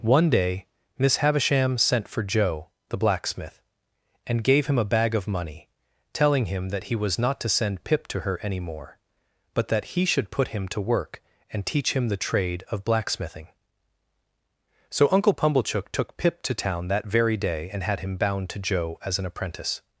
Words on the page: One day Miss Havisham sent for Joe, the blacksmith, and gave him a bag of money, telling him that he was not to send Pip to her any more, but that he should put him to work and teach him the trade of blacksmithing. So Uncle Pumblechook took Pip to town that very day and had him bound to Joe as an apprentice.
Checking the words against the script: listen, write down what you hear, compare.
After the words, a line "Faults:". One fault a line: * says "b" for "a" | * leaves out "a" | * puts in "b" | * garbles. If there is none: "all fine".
One day Miss Havisham sent for Joe, the blacksmith, and gave him a bag of money, telling him that he was not to send Pip to her any more, but that he should put him to work and teach him the trade of blacksmithing. So Uncle Pumblechook took Pip to town that very day and had him bound to Joe as an apprentice.
Faults:
all fine